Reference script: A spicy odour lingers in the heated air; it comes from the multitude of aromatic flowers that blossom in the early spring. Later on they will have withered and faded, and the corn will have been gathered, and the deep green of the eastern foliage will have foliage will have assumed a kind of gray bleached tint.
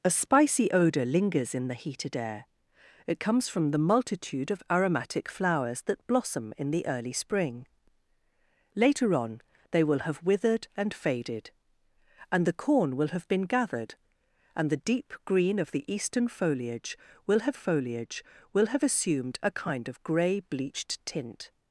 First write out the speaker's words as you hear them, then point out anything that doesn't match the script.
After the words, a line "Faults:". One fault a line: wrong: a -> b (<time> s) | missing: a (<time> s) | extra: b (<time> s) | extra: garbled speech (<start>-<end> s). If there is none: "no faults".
A spicy odour lingers in the heated air; it comes from the multitude of aromatic flowers that blossom in the early spring. Later on they will have withered and faded, and the corn will have been gathered, and the deep green of the eastern foliage will have foliage will have assumed a kind of gray bleached tint.
Faults:
no faults